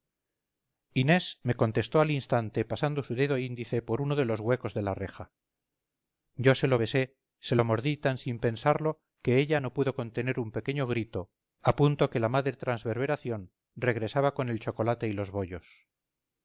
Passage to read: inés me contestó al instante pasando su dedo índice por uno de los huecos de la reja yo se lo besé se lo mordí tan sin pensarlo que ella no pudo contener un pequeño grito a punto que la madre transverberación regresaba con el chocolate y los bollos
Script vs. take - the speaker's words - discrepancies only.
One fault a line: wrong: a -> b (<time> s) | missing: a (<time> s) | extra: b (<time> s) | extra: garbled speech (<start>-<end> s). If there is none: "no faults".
no faults